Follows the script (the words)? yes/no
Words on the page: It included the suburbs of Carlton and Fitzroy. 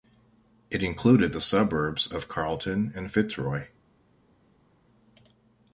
yes